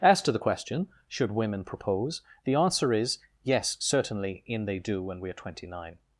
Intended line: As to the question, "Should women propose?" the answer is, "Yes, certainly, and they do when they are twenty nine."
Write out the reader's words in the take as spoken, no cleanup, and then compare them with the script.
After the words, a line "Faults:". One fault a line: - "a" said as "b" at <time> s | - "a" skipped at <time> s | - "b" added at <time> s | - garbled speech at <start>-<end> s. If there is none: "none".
As to the question, "Should women propose?" the answer is, "Yes, certainly, in they do when we are twenty nine."
Faults:
- "and" said as "in" at 4.5 s
- "they" said as "we" at 5.2 s